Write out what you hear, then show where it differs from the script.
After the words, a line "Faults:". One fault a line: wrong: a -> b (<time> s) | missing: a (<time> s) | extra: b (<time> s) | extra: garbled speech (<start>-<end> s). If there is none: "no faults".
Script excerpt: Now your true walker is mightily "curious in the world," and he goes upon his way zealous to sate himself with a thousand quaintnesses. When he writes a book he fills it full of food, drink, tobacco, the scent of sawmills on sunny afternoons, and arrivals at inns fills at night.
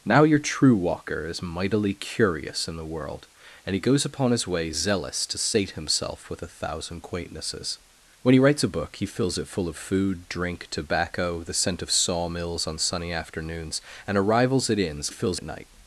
Now your true walker is mightily "curious in the world," and he goes upon his way zealous to sate himself with a thousand quaintnesses. When he writes a book he fills it full of food, drink, tobacco, the scent of sawmills on sunny afternoons, and arrivals at inns fills at night.
Faults:
no faults